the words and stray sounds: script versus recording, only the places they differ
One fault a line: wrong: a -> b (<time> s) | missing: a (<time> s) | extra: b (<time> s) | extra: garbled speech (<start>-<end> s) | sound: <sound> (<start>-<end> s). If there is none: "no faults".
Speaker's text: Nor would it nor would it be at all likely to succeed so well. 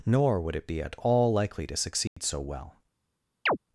missing: nor would it (0.7 s)
sound: dropout (2.1-2.2 s)
sound: chirp (3.5-3.6 s)